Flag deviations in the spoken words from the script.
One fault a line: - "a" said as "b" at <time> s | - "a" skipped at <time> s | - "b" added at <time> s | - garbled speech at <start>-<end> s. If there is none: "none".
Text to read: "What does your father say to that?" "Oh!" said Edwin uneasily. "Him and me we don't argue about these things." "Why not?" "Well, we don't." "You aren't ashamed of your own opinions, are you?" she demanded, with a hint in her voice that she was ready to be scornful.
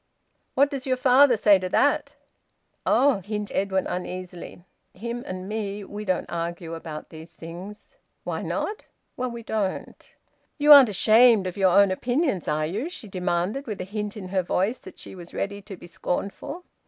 - "said" said as "hint" at 3.2 s